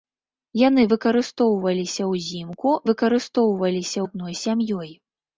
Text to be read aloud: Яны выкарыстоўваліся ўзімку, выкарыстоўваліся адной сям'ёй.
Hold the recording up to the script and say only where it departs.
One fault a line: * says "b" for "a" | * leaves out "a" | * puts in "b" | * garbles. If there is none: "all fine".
all fine